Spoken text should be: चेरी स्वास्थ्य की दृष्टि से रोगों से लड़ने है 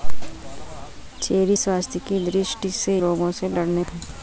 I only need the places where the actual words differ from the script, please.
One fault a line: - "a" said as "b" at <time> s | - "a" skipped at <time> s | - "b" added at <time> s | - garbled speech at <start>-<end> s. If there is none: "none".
none